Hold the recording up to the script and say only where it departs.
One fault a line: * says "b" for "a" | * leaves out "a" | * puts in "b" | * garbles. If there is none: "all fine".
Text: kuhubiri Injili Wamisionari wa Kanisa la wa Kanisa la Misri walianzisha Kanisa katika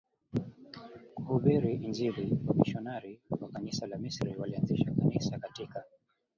* leaves out "wa Kanisa la"